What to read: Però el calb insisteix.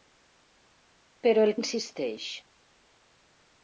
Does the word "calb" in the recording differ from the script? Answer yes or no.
yes